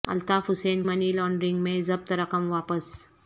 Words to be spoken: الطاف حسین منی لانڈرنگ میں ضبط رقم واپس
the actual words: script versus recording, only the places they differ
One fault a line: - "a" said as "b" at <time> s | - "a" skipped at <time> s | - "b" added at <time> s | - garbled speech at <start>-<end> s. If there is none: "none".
none